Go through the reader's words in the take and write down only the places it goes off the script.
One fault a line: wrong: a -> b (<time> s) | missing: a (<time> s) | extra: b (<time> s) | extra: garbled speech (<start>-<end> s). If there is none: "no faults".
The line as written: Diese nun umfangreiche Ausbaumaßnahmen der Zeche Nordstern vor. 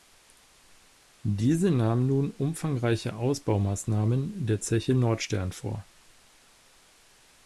extra: nahm (1.7 s)